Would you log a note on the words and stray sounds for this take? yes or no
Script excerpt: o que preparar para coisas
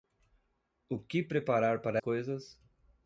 no